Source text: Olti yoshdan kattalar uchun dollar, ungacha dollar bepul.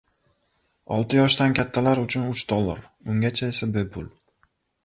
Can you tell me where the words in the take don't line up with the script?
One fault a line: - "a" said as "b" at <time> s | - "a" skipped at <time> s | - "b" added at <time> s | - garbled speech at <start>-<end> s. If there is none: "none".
- "uch" added at 2.3 s
- "dollar" said as "esa" at 3.5 s